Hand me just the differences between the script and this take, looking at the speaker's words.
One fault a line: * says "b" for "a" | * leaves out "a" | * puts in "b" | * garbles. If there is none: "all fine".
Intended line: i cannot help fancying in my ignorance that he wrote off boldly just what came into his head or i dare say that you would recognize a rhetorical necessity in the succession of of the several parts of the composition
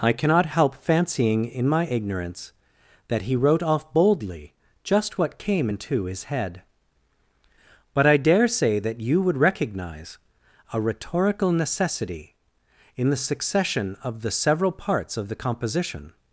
* says "but" for "or"
* leaves out "of"